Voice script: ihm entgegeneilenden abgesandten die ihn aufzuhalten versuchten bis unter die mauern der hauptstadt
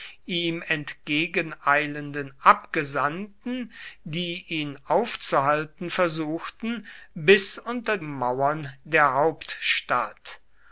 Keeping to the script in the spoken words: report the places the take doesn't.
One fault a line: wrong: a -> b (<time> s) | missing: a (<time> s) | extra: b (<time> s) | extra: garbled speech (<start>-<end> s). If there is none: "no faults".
missing: die (8.0 s)